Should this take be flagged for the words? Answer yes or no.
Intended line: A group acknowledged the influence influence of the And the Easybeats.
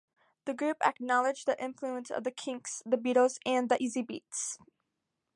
yes